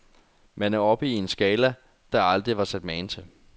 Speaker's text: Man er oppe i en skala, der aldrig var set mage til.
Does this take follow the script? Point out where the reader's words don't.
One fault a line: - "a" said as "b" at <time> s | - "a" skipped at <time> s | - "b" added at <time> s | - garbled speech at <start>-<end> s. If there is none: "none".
none